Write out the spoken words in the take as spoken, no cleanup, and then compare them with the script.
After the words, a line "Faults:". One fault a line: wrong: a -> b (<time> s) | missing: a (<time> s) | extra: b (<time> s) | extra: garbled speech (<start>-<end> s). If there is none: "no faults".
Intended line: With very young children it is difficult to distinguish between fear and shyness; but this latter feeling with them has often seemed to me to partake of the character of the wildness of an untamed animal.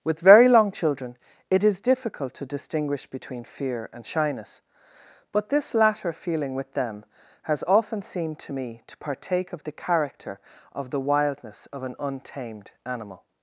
With very long children it is difficult to distinguish between fear and shyness; but this latter feeling with them has often seemed to me to partake of the character of the wildness of an untamed animal.
Faults:
wrong: young -> long (0.5 s)